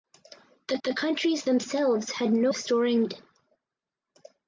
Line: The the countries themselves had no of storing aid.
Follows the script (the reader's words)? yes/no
yes